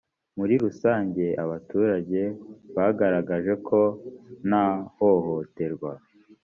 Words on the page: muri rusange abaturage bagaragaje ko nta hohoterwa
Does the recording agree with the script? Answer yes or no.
yes